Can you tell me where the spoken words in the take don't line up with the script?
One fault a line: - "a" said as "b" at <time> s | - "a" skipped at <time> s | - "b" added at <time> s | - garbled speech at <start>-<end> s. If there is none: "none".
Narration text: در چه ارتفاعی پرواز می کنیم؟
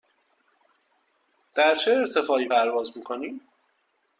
none